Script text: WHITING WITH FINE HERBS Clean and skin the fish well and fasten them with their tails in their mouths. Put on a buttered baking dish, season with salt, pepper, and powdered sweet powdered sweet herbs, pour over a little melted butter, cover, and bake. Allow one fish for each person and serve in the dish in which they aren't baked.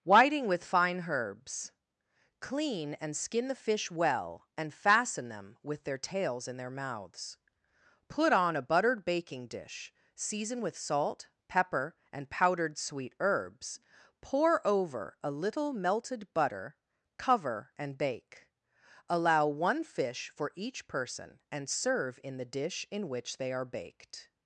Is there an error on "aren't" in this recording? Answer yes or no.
yes